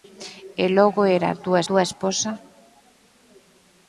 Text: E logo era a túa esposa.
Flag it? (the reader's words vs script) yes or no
yes